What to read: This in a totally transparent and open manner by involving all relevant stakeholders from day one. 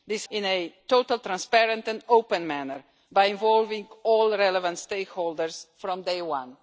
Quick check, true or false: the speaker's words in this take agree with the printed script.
true